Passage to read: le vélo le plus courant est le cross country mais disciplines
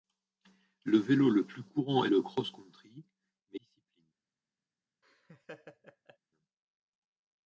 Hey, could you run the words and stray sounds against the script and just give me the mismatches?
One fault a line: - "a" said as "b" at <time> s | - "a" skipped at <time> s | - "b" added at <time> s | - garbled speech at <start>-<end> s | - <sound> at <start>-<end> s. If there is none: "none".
- laugh at 5.0-6.2 s